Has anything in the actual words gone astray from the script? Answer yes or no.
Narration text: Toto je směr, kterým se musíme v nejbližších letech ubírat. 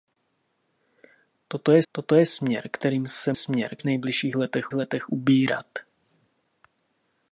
yes